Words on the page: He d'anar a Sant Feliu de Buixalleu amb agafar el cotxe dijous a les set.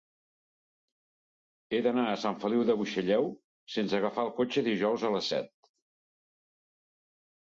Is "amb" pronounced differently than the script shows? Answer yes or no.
yes